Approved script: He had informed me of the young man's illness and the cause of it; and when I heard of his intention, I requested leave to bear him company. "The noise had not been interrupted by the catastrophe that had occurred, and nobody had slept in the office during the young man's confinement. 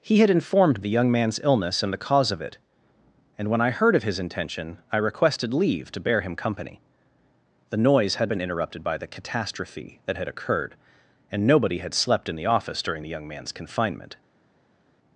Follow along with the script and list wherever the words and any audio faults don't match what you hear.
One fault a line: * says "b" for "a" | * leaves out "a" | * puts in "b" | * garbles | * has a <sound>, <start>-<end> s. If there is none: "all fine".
* leaves out "me of"
* leaves out "not"